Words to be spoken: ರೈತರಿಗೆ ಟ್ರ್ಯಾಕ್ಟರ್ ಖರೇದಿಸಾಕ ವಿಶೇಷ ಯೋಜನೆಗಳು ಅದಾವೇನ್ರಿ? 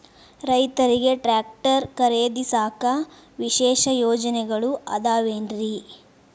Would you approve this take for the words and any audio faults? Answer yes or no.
yes